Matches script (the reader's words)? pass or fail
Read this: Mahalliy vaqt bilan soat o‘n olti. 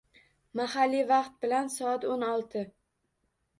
pass